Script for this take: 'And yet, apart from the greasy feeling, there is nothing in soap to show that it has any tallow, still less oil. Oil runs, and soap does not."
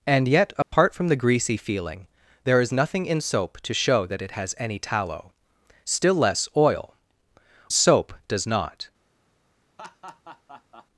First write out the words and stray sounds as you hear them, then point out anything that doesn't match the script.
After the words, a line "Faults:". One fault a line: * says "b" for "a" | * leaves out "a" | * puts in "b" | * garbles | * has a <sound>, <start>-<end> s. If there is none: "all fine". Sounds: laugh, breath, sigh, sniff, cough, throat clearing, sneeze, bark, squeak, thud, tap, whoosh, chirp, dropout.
'And yet, apart from the greasy feeling, there is nothing in soap to show that it has any tallow, still less oil. Soap does not."
Faults:
* has a dropout, 0.6-0.7 s
* leaves out "Oil runs and"
* has a laugh, 9.8-10.9 s